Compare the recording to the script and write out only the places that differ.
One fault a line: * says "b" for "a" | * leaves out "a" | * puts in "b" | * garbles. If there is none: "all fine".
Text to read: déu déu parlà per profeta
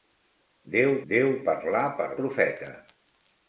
all fine